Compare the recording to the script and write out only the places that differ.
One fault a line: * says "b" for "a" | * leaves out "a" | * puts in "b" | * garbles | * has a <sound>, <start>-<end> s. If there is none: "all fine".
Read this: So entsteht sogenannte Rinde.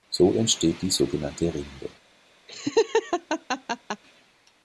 * puts in "die"
* has a laugh, 2.5-4.0 s